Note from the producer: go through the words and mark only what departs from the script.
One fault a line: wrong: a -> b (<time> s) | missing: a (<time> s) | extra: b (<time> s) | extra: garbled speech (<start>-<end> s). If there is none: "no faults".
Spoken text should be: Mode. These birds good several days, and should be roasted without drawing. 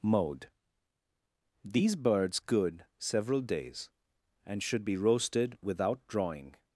no faults